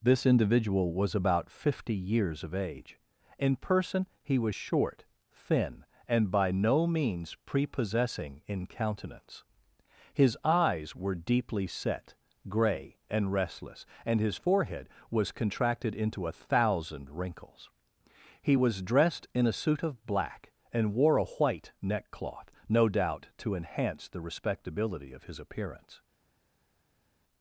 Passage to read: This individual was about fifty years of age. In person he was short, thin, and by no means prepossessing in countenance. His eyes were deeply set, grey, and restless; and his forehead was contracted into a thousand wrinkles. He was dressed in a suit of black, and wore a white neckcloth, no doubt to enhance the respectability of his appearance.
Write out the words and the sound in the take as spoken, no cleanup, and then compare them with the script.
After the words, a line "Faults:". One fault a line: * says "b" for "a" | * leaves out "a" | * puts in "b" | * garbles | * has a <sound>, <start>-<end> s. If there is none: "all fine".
This individual was about fifty years of age. In person he was short, thin, and by no means prepossessing in countenance. His eyes were deeply set, grey, and restless; and his forehead was contracted into a thousand wrinkles. He was dressed in a suit of black, and wore a white neckcloth, no doubt to enhance the respectability of his appearance.
Faults:
all fine